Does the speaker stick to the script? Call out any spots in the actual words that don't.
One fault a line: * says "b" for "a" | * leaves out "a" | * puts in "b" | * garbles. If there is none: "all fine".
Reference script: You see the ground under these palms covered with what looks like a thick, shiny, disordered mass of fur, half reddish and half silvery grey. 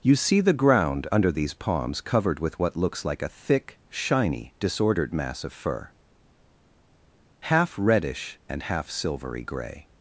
all fine